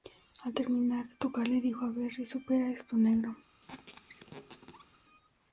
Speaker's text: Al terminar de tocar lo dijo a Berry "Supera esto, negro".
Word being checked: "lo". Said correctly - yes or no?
no